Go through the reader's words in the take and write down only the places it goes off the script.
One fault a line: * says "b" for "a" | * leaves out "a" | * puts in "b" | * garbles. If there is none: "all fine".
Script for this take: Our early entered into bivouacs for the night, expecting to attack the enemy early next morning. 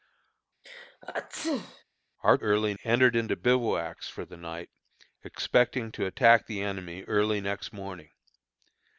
all fine